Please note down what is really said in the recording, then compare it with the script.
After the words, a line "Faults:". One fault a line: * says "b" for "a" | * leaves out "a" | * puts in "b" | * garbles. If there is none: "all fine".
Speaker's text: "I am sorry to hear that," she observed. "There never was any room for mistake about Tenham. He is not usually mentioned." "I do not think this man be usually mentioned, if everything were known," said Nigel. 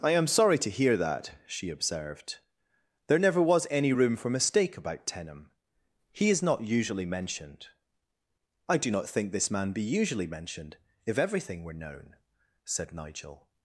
"I am sorry to hear that," she observed. "There never was any room for mistake about Tenham. He is not usually mentioned." "I do not think this man be usually mentioned, if everything were known," said Nigel.
Faults:
all fine